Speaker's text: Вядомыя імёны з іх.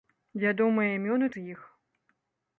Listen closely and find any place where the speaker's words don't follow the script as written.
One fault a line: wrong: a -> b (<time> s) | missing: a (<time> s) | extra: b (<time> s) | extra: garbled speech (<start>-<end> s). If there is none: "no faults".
no faults